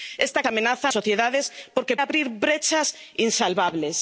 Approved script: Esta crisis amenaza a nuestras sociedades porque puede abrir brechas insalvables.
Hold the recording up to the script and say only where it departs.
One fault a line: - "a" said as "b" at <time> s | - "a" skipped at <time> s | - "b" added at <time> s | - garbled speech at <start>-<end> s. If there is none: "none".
- "crisis" skipped at 0.4 s
- "nuestras" skipped at 0.9 s
- "puede" skipped at 2.0 s